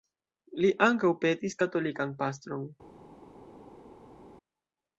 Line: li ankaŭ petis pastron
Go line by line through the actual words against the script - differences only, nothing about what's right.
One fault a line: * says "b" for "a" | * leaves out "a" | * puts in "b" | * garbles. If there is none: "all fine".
* puts in "katolikan"